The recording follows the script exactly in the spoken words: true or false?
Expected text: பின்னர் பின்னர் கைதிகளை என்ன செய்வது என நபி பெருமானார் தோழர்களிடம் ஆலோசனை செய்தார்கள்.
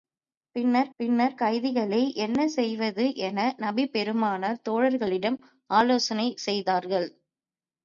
true